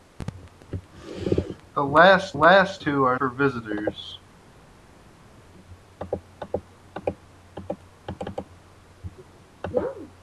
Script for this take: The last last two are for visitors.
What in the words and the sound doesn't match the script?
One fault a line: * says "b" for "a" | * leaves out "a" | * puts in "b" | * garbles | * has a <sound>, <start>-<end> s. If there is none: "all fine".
all fine